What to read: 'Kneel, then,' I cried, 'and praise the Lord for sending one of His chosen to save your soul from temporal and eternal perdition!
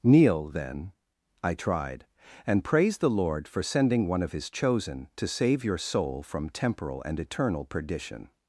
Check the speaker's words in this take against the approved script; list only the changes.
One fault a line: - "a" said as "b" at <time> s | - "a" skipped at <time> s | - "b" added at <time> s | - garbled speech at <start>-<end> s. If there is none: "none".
- "cried" said as "tried" at 1.5 s